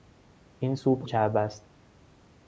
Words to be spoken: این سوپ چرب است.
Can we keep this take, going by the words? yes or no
yes